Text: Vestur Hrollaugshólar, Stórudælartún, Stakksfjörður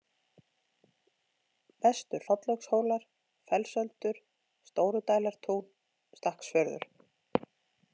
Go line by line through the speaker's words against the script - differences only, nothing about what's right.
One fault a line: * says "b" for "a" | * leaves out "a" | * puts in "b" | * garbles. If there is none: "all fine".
* puts in "Fellsöldur"